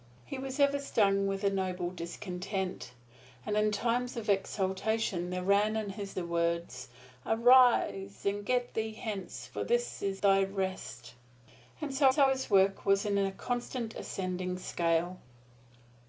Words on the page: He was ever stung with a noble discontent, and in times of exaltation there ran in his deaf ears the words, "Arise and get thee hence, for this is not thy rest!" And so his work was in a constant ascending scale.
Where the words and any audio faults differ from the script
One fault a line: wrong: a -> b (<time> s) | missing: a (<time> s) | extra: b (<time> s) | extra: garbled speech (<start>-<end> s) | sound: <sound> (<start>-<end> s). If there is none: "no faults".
missing: deaf ears (6.2 s)
missing: not (10.2 s)
extra: so (12.1 s)